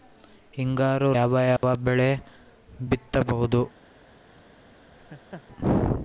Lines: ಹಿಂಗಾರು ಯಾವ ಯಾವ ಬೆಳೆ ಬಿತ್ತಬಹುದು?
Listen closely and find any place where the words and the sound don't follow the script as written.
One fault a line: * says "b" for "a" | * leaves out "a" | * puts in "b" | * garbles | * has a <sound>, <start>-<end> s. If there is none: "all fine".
* has a dropout, 1.6-1.6 s
* has a laugh, 5.0-5.4 s